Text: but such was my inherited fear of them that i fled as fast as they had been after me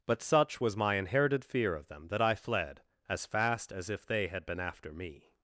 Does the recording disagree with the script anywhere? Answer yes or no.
yes